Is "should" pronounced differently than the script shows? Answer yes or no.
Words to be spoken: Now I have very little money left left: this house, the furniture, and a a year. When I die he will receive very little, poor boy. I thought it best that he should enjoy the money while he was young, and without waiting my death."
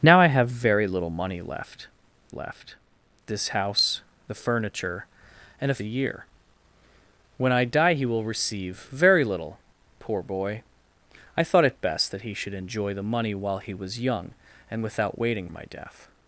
no